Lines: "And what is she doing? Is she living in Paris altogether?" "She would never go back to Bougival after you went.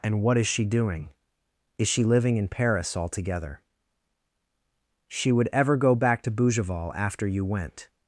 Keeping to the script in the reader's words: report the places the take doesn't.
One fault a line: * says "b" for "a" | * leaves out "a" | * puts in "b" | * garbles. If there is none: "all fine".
* says "ever" for "never"